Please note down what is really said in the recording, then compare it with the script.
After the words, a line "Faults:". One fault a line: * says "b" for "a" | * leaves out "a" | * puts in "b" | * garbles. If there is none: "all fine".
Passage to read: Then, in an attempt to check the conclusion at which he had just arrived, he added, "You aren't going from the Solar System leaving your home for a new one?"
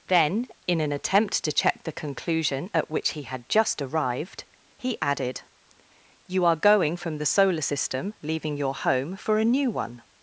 Then, in an attempt to check the conclusion at which he had just arrived, he added, "You are going from the Solar System leaving your home for a new one?"
Faults:
* says "are" for "aren't"